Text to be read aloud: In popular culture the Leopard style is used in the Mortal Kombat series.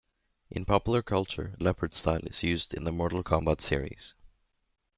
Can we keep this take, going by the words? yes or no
no